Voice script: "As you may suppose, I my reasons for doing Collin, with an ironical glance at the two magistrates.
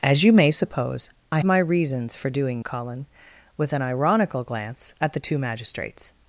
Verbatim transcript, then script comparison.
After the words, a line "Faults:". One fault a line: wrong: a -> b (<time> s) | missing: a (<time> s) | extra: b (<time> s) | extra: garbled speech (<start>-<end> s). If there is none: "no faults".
"As you may suppose, I my reasons for doing Collin, with an ironical glance at the two magistrates.
Faults:
no faults